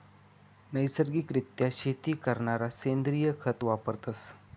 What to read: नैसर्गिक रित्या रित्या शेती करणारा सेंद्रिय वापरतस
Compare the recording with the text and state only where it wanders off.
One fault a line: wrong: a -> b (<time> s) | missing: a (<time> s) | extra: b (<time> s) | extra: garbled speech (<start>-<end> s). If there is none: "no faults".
missing: रित्या (1.7 s)
extra: खत (3.4 s)